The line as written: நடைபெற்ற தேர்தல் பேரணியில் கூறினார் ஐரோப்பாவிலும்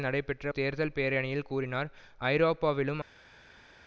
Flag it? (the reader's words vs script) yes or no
no